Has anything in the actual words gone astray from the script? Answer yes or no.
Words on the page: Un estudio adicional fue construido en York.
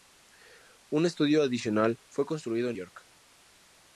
no